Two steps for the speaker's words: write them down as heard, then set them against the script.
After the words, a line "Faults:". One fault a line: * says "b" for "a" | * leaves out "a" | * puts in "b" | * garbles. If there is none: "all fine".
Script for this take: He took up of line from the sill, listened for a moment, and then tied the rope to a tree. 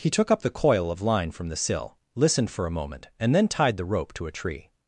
He took up the coil of line from the sill, listened for a moment, and then tied the rope to a tree.
Faults:
* puts in "the coil"